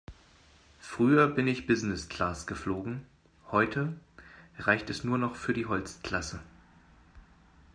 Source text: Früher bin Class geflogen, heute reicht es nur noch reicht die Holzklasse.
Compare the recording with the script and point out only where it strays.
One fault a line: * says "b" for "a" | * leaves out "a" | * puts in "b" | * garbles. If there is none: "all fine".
* puts in "ich Business"
* says "für" for "reicht"